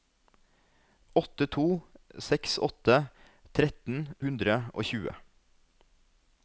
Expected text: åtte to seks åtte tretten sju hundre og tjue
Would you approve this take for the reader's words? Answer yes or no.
no